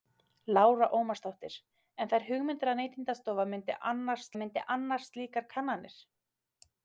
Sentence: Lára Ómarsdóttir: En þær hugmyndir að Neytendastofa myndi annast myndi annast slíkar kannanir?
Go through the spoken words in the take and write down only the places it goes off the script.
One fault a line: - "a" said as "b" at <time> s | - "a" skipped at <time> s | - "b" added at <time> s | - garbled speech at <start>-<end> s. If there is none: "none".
none